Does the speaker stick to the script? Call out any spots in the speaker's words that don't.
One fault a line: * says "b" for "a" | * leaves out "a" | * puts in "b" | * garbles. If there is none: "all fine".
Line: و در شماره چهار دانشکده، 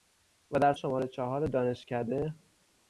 all fine